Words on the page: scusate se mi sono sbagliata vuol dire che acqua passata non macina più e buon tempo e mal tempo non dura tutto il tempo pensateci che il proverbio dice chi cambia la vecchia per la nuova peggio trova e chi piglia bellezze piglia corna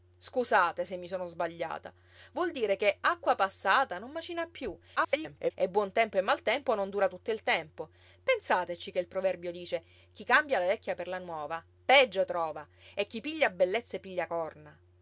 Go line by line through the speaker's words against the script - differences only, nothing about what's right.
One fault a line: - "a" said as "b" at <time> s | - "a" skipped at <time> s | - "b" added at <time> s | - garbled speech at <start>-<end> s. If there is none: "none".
- garbled speech at 5.0-5.5 s